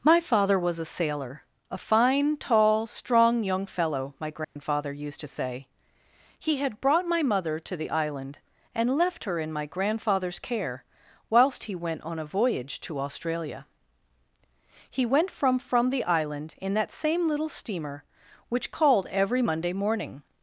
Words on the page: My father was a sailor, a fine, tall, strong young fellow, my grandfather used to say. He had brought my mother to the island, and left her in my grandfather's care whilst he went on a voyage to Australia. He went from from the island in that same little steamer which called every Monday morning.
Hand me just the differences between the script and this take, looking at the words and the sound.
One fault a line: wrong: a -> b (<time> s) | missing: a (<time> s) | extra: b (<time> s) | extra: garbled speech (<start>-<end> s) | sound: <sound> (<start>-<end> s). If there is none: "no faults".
sound: dropout (4.4-4.6 s)